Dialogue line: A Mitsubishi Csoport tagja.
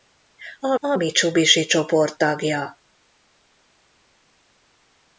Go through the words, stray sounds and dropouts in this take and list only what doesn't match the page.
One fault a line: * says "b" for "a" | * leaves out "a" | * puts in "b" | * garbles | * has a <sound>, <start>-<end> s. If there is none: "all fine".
* puts in "a"